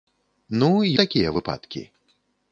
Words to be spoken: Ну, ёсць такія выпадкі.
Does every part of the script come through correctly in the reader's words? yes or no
no